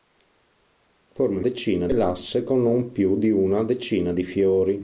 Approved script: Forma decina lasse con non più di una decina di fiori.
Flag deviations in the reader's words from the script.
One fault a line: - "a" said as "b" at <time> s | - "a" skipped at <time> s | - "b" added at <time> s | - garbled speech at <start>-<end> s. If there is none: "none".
none